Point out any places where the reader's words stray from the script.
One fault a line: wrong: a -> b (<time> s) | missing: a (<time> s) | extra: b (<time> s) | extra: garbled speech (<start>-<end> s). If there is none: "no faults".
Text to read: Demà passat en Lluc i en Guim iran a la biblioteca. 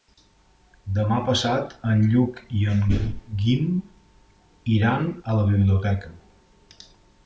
no faults